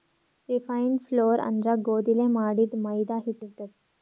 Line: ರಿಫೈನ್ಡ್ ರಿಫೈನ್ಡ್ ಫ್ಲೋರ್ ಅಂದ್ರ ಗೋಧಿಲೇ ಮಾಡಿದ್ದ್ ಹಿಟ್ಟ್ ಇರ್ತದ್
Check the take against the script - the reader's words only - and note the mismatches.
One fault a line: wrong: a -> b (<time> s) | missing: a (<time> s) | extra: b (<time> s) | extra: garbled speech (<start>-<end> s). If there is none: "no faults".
missing: ರಿಫೈನ್ಡ್ (1.0 s)
extra: ಮೈದಾ (2.8 s)